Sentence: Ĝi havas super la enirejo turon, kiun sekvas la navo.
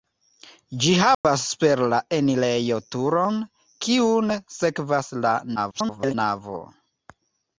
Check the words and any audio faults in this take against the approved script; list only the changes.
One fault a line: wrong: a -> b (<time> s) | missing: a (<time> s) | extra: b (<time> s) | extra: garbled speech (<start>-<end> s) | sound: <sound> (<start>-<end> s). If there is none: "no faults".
sound: dropout (1.1-1.2 s)
extra: garbled speech (5.6-6.1 s)